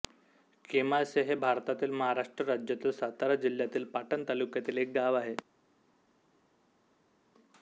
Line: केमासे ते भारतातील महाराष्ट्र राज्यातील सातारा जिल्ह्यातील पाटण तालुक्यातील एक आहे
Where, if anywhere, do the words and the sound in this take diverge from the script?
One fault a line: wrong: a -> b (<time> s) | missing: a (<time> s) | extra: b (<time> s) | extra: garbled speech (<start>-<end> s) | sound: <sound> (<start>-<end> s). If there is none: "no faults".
wrong: ते -> हे (1.2 s)
extra: गाव (4.9 s)